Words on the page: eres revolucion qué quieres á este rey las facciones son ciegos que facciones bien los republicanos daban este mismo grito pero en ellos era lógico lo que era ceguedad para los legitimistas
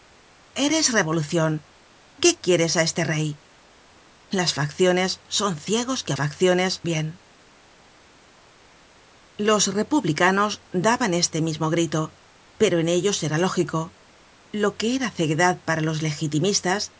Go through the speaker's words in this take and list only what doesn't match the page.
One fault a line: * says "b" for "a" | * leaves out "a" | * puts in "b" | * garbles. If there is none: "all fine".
all fine